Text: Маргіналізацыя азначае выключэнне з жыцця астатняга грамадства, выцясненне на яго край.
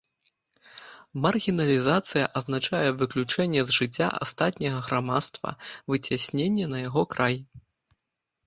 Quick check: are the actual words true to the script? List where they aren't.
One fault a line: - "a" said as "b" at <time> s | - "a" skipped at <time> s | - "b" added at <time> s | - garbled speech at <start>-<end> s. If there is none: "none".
none